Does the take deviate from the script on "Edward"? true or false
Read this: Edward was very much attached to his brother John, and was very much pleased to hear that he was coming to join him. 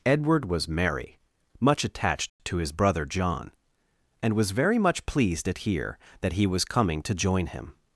false